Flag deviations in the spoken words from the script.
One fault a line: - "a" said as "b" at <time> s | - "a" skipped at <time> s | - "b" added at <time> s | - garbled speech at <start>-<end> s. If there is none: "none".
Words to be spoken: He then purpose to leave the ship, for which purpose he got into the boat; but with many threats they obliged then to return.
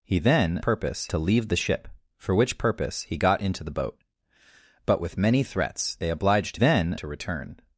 none